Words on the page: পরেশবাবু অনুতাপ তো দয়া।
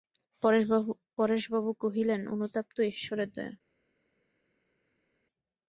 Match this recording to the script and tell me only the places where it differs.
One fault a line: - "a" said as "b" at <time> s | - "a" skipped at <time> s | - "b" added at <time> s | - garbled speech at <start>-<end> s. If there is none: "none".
- "কহিলেন" added at 1.8 s
- "ঈশ্বরের" added at 2.9 s